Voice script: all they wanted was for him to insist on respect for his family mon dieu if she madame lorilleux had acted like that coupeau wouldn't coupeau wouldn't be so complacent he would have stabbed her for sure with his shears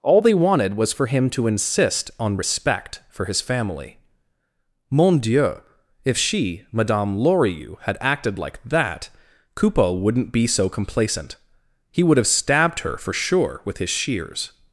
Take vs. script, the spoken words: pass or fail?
fail